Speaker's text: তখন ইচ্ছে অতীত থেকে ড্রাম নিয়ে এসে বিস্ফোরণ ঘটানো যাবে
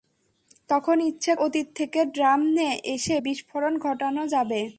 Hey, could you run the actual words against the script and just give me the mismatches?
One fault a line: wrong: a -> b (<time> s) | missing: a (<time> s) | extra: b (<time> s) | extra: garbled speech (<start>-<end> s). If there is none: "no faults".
no faults